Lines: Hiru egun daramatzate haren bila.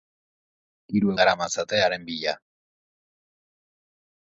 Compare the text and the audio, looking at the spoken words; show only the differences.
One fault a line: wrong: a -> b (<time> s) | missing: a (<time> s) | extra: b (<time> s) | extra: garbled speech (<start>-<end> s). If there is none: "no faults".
missing: egun (1.1 s)